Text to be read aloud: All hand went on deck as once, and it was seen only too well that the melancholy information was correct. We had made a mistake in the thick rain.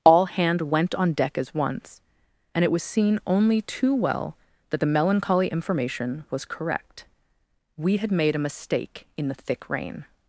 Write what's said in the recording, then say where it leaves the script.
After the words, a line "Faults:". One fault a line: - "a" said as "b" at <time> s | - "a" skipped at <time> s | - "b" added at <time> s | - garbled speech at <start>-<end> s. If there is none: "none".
All hand went on deck as once, and it was seen only too well that the melancholy information was correct. We had made a mistake in the thick rain.
Faults:
none